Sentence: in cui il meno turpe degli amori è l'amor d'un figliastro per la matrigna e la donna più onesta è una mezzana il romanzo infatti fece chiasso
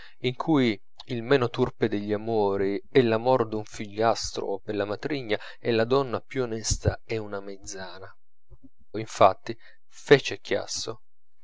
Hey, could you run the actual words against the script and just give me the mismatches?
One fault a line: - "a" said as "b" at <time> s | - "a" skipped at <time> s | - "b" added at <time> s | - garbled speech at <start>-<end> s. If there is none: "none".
- "il romanzo" skipped at 8.1 s